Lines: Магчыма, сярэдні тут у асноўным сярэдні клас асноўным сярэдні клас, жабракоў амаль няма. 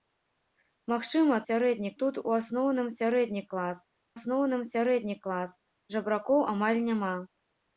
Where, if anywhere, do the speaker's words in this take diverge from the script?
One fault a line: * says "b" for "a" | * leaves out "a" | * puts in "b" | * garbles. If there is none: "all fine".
all fine